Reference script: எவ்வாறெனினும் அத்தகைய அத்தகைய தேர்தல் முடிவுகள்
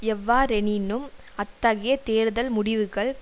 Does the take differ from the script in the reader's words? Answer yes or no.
yes